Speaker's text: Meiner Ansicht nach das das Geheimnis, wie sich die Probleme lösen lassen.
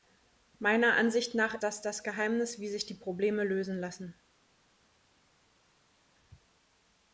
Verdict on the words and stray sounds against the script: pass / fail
pass